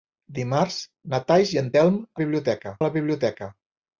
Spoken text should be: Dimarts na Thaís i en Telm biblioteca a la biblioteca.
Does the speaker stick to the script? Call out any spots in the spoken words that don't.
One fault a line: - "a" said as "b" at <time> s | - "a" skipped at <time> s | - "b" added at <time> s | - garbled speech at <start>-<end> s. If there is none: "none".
none